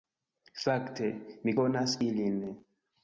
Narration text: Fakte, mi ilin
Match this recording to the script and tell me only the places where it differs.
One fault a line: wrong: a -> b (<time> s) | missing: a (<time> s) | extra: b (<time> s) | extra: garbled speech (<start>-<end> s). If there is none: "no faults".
extra: konas (1.6 s)